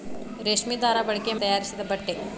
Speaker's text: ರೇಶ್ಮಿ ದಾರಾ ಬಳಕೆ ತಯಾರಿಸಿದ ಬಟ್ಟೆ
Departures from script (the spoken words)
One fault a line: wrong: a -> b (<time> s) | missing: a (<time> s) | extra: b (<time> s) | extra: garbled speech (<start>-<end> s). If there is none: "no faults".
no faults